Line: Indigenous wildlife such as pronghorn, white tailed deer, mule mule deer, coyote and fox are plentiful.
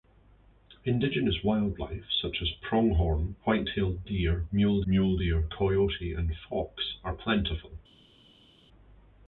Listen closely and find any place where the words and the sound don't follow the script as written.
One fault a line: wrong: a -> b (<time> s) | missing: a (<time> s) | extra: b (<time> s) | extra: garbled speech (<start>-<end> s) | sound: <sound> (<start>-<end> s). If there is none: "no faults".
no faults